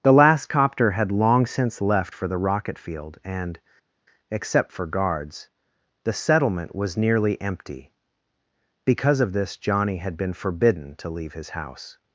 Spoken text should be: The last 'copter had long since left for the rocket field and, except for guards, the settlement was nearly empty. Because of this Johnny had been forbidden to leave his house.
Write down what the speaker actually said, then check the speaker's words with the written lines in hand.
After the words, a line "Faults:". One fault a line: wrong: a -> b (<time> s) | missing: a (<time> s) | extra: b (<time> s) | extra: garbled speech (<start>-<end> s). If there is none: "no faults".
The last 'copter had long since left for the rocket field and, except for guards, the settlement was nearly empty. Because of this Johnny had been forbidden to leave his house.
Faults:
no faults